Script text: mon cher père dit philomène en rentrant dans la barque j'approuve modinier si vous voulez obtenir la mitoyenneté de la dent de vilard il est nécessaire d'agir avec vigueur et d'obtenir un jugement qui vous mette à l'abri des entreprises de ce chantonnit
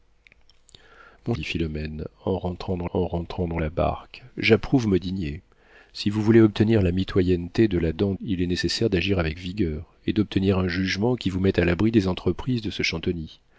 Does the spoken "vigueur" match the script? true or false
true